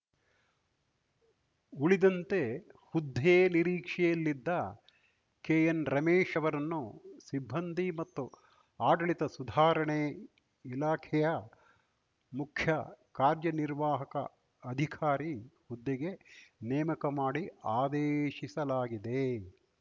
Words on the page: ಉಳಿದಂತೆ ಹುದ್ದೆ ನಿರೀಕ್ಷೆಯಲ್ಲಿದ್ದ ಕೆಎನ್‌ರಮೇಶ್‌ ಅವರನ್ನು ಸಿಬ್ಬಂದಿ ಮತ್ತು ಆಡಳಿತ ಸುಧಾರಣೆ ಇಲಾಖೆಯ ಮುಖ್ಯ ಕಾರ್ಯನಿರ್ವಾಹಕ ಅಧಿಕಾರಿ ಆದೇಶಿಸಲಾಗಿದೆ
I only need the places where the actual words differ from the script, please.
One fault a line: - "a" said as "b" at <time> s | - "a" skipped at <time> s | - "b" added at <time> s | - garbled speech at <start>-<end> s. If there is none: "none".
- "ಹುದ್ದೆಗೆ ನೇಮಕ ಮಾಡಿ" added at 15.7 s